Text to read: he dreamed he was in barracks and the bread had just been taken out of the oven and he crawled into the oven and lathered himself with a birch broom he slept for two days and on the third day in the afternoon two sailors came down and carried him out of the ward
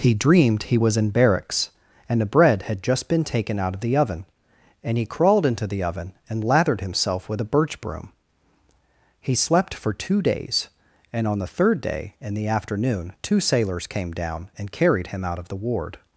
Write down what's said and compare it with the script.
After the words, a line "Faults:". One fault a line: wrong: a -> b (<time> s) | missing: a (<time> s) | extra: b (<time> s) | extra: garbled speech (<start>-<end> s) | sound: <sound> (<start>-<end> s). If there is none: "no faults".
he dreamed he was in barracks and the bread had just been taken out of the oven and he crawled into the oven and lathered himself with a birch broom he slept for two days and on the third day in the afternoon two sailors came down and carried him out of the ward
Faults:
no faults